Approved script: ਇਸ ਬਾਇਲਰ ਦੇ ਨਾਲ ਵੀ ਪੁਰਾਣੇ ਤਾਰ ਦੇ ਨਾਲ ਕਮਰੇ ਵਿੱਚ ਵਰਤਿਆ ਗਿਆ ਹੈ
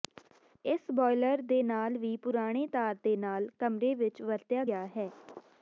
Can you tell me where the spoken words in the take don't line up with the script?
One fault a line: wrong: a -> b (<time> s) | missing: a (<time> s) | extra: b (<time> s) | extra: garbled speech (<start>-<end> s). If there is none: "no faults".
no faults